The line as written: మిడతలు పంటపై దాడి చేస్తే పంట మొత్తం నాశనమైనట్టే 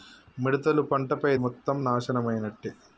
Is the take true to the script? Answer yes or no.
no